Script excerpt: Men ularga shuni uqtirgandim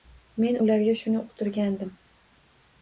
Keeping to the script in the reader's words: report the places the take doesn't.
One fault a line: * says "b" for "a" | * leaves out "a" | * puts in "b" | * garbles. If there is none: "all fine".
all fine